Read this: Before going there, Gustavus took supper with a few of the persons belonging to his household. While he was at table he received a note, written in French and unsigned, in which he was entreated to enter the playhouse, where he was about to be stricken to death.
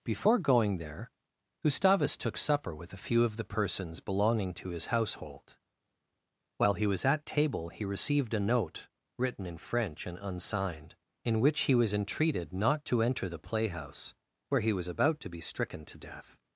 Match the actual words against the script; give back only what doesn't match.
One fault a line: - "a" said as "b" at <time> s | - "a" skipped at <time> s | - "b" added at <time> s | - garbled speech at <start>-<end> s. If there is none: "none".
- "not" added at 12.5 s